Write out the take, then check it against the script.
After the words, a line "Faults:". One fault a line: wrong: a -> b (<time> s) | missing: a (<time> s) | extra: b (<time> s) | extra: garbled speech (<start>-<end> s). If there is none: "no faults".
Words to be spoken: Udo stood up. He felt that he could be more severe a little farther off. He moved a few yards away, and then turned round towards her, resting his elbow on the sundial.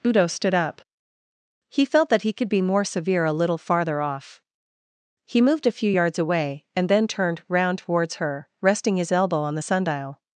Udo stood up. He felt that he could be more severe a little farther off. He moved a few yards away, and then turned round towards her, resting his elbow on the sundial.
Faults:
no faults